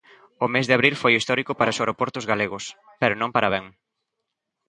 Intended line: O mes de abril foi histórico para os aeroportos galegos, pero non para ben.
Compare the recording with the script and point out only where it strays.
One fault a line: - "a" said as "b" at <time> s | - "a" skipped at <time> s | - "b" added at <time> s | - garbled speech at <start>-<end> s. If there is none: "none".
none